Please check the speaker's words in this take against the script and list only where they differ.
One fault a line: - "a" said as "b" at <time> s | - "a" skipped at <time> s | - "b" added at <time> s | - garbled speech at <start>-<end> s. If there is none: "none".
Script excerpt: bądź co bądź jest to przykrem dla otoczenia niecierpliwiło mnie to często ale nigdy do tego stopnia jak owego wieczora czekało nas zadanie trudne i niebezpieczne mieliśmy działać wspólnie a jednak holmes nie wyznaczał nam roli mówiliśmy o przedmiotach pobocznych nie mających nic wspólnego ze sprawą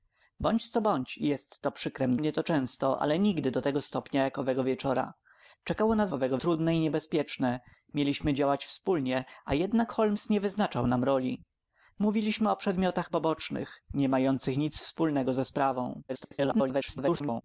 - "dla otoczenia niecierpliwiło" skipped at 2.2 s
- "zadanie" said as "owego" at 6.1 s
- garbled speech at 16.1-17.4 s